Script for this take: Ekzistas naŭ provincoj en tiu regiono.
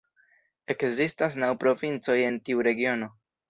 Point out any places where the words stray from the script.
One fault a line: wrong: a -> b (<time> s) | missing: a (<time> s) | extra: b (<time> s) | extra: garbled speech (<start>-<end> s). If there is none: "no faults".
no faults